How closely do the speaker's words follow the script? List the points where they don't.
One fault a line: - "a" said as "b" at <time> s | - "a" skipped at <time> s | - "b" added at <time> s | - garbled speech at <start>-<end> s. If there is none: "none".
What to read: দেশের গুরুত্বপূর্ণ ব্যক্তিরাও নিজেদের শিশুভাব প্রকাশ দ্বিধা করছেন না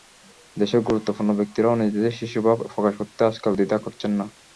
- "করতে আজকাল" added at 3.0 s